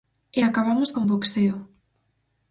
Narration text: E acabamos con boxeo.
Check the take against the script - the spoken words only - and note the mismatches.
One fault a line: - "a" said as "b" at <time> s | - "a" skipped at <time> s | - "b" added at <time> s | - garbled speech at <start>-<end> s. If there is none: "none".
none